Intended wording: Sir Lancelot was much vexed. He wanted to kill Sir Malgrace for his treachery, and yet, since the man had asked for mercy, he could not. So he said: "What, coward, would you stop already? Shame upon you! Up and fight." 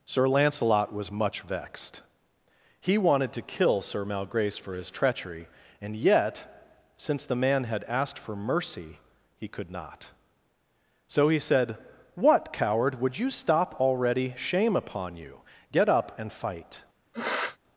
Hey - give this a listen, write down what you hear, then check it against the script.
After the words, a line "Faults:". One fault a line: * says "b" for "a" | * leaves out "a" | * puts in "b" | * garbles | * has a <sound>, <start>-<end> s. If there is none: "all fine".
Sir Lancelot was much vexed. He wanted to kill Sir Malgrace for his treachery, and yet, since the man had asked for mercy, he could not. So he said: "What, coward, would you stop already? Shame upon you! Get up and fight."
Faults:
* puts in "Get"
* has a sniff, 17.1-17.6 s